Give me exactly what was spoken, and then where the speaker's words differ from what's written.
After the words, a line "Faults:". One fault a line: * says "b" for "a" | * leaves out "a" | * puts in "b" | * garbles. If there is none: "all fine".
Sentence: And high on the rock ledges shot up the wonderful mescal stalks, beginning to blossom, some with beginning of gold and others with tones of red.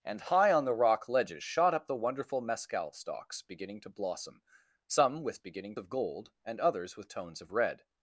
And high on the rock ledges shot up the wonderful mescal stalks, beginning to blossom, some with beginning of gold and others with tones of red.
Faults:
all fine